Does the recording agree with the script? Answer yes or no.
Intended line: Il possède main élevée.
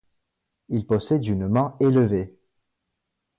no